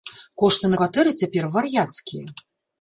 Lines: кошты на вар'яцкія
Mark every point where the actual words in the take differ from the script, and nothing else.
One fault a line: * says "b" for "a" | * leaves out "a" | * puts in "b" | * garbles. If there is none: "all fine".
* puts in "кватэры цяпер"